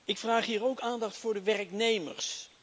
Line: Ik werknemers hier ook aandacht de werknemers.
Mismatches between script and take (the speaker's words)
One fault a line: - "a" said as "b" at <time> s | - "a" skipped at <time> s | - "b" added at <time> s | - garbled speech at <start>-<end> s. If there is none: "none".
- "werknemers" said as "vraag" at 0.2 s
- "voor" added at 1.2 s